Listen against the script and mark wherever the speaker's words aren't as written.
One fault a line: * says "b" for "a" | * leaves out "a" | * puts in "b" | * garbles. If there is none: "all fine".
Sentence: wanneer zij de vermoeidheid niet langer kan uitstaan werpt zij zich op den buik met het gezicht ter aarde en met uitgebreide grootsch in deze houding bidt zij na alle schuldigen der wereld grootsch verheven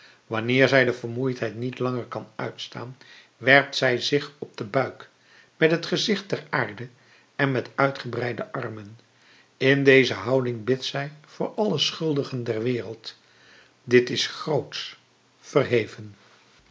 * says "armen" for "grootsch"
* says "voor" for "na"
* puts in "dit is"